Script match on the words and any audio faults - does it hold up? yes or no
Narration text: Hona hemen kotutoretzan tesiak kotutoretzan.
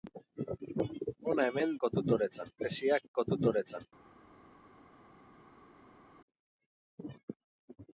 yes